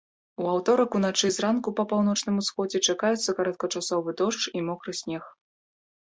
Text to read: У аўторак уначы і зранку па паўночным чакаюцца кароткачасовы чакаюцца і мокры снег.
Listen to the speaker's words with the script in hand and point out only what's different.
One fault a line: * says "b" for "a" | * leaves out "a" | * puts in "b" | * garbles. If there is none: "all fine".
* puts in "усходзе"
* says "дождж" for "чакаюцца"